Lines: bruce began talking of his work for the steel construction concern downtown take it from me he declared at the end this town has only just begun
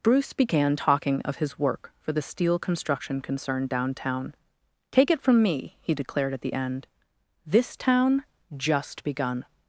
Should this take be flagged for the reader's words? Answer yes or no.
yes